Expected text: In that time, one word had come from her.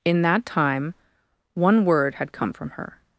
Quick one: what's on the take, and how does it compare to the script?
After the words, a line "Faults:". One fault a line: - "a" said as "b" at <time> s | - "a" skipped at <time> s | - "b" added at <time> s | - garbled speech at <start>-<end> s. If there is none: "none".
In that time, one word had come from her.
Faults:
none